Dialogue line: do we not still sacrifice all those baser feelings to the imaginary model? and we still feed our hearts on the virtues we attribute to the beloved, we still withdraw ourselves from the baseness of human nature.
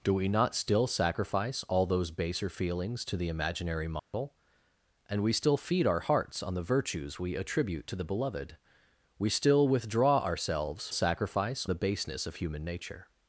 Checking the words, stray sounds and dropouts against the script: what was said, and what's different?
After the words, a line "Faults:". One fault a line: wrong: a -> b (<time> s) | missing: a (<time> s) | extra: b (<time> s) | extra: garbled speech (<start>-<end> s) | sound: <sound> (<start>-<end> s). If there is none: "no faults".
do we not still sacrifice all those baser feelings to the imaginary model? and we still feed our hearts on the virtues we attribute to the beloved, we still withdraw ourselves sacrifice the baseness of human nature.
Faults:
sound: dropout (4.0-4.1 s)
wrong: from -> sacrifice (10.9 s)